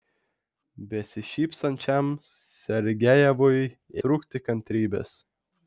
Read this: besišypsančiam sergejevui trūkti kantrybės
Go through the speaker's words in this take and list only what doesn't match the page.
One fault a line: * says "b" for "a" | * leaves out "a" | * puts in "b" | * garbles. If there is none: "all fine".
all fine